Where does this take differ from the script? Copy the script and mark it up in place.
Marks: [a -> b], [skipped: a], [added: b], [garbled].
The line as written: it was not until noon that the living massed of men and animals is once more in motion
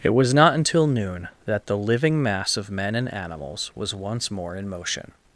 it was not until noon that the living [massed -> mass] of men and animals [is -> was] once more in motion